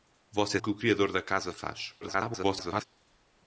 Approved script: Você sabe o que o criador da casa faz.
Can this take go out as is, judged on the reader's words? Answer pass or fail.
fail